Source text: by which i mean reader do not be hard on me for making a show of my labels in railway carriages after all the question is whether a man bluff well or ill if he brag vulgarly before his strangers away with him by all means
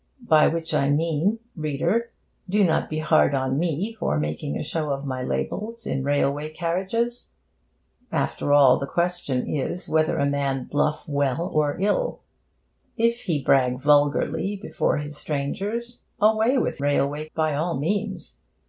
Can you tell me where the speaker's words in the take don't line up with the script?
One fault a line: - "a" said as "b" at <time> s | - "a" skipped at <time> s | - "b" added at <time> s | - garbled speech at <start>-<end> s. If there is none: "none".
- "him" said as "railway" at 16.8 s